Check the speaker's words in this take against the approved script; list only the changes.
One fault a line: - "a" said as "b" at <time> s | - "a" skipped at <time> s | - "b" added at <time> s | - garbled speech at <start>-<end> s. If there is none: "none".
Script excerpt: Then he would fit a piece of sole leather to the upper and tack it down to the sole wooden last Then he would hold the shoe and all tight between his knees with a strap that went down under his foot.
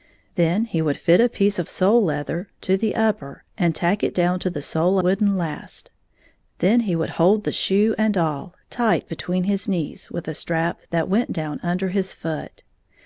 none